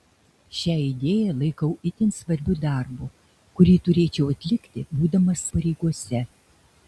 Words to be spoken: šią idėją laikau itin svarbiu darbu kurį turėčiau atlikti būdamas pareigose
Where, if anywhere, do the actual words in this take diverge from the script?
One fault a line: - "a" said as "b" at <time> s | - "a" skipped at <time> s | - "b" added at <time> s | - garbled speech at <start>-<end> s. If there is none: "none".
none